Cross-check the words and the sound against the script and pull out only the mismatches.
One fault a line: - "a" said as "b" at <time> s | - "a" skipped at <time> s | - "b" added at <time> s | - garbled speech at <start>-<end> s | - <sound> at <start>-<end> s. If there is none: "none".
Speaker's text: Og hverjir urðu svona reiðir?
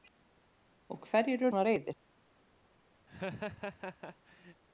- "urðu" skipped at 1.5 s
- laugh at 3.1-4.6 s